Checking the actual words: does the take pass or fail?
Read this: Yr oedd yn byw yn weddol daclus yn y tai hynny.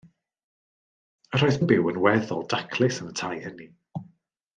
pass